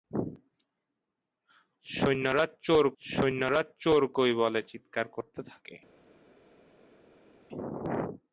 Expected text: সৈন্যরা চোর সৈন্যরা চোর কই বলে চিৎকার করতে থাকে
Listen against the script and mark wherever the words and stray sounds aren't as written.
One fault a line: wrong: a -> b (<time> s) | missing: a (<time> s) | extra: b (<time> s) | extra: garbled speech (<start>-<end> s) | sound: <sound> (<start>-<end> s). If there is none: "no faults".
no faults